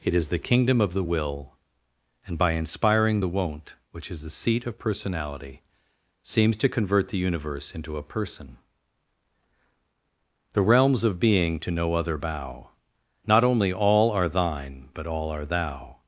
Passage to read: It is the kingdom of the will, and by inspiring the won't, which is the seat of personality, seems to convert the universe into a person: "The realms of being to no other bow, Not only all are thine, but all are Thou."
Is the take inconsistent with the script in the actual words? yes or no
no